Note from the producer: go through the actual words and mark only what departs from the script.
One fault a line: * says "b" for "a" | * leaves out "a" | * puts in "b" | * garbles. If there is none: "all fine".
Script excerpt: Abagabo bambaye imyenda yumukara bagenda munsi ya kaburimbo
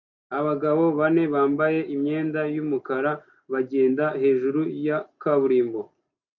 * puts in "bane"
* says "hejuru" for "munsi"